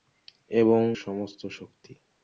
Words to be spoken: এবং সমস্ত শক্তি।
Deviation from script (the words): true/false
false